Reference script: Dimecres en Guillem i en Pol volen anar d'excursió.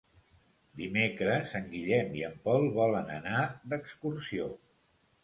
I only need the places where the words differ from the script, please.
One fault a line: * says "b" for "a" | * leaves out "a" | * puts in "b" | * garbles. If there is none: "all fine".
all fine